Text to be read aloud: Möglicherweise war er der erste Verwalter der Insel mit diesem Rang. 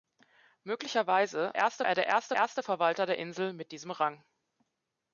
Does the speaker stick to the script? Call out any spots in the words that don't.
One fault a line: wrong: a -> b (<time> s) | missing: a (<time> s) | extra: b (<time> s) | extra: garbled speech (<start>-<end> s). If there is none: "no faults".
wrong: war -> erste (1.6 s)
extra: erste (2.3 s)